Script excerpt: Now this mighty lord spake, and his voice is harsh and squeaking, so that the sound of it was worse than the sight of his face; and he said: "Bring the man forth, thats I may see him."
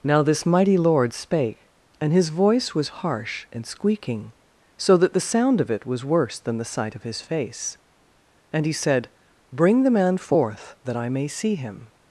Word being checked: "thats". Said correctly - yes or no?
no